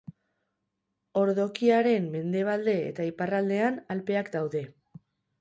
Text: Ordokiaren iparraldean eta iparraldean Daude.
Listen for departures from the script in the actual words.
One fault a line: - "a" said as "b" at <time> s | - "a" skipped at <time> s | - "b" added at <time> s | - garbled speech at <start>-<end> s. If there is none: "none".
- "iparraldean" said as "mendebalde" at 2.1 s
- "Alpeak" added at 4.0 s